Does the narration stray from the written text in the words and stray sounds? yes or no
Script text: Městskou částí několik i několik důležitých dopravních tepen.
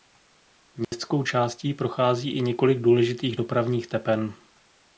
yes